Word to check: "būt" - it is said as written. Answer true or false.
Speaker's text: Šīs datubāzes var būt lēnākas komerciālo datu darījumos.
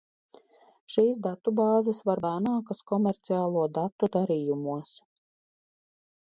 false